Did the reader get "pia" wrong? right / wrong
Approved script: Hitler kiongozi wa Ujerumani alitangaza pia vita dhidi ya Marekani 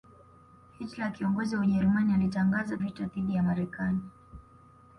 wrong